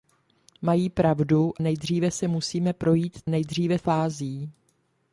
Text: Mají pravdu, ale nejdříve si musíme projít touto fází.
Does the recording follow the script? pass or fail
fail